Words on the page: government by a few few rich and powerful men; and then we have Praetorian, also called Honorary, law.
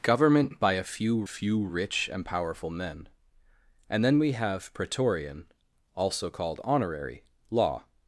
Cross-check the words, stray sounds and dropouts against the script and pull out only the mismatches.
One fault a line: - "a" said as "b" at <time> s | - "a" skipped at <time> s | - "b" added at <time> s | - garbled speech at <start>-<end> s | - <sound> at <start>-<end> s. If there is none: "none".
none